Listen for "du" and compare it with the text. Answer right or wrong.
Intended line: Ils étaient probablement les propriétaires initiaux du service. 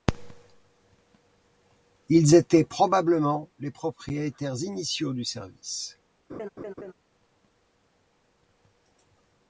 right